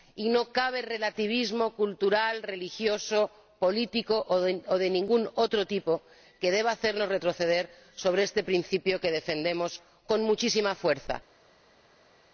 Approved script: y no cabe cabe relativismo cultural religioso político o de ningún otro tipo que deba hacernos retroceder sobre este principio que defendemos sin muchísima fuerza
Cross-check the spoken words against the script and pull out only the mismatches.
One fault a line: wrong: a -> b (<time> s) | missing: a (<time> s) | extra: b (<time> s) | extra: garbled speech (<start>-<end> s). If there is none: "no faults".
missing: cabe (0.8 s)
wrong: sin -> con (10.1 s)